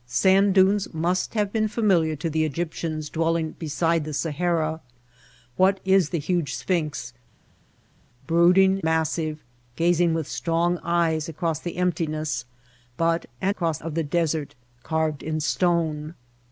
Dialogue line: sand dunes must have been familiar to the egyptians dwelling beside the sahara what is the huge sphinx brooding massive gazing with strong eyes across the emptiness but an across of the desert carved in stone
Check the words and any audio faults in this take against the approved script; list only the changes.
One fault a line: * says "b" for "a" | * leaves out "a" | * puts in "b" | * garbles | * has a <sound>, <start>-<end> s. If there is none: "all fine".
all fine